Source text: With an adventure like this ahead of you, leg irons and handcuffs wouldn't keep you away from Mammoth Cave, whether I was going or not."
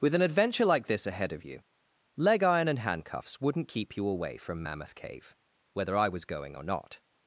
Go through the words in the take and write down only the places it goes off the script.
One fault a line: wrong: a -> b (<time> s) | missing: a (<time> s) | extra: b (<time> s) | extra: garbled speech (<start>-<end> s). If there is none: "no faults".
wrong: irons -> iron (2.4 s)